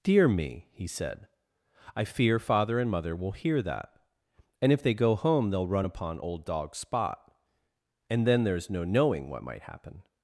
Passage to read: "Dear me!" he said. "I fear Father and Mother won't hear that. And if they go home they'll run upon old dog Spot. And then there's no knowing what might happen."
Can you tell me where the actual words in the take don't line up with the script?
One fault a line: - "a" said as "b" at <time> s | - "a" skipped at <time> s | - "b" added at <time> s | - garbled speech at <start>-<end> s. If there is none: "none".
- "won't" said as "will" at 3.1 s